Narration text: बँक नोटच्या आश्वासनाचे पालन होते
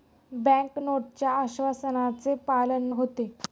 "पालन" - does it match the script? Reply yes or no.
yes